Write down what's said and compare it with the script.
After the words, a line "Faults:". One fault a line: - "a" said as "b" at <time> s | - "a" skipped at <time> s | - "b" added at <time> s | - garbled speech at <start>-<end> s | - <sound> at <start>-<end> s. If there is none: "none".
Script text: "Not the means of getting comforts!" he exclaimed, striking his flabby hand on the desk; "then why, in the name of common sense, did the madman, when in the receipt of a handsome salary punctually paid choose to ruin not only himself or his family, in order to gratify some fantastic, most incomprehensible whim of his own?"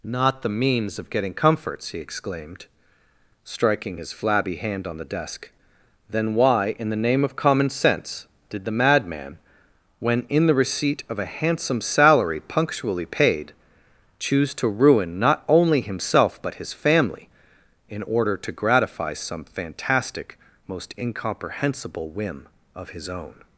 "Not the means of getting comforts!" he exclaimed, striking his flabby hand on the desk; "then why, in the name of common sense, did the madman, when in the receipt of a handsome salary punctually paid choose to ruin not only himself but his family, in order to gratify some fantastic, most incomprehensible whim of his own?"
Faults:
- "or" said as "but" at 16.4 s